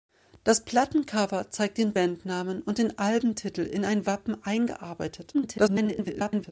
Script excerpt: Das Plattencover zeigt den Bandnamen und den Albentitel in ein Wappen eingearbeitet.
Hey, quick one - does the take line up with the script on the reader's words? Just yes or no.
no